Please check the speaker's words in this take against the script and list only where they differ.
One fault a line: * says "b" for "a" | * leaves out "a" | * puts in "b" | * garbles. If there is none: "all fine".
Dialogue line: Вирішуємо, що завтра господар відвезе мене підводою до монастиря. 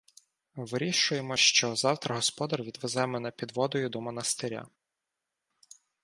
all fine